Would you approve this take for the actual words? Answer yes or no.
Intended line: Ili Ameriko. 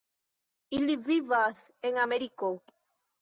no